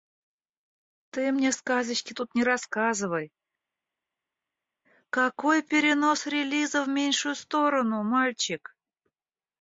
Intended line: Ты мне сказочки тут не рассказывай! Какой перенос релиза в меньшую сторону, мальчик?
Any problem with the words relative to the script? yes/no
no